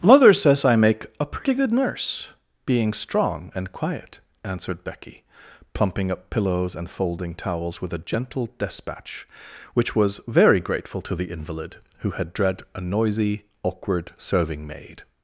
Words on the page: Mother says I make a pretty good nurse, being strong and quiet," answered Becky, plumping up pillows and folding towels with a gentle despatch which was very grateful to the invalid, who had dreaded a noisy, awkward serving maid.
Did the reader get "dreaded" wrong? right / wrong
wrong